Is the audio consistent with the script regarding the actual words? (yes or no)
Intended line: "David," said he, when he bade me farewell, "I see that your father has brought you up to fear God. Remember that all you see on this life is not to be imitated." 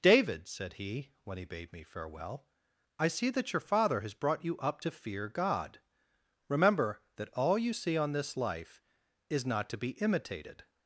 yes